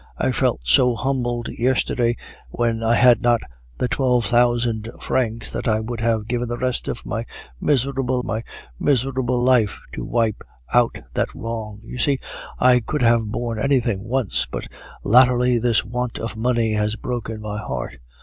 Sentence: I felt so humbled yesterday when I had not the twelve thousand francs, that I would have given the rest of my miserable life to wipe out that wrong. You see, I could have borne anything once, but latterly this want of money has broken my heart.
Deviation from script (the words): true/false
true